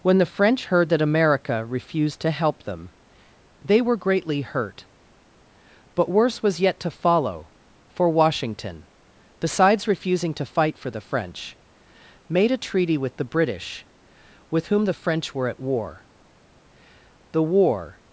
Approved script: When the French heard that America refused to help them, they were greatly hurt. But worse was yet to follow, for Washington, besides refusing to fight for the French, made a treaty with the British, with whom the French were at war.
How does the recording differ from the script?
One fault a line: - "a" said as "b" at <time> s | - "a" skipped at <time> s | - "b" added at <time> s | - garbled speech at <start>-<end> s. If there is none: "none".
- "The War" added at 17.3 s